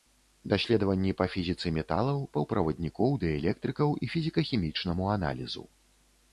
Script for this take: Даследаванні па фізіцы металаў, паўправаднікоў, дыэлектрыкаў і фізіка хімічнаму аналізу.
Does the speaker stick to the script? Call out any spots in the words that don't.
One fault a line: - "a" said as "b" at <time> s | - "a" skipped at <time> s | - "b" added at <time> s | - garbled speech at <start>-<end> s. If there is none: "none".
none